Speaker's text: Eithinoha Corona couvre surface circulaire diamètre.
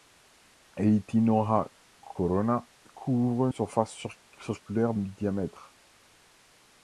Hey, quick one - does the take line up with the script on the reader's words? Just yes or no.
yes